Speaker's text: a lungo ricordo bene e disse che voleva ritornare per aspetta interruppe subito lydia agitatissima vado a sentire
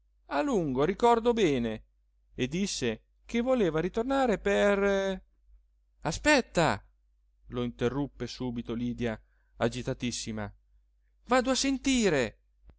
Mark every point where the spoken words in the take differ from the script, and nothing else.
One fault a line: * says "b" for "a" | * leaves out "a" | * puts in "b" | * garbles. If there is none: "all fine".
* puts in "lo"